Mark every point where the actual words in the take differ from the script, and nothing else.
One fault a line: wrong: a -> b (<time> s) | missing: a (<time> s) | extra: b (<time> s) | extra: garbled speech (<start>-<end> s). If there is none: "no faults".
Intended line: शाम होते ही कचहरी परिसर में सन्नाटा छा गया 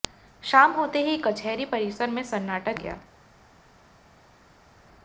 missing: छा (2.7 s)